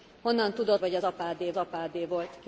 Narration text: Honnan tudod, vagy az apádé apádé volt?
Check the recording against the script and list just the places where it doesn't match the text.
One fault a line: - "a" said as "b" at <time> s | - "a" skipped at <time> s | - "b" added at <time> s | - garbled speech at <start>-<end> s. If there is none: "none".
none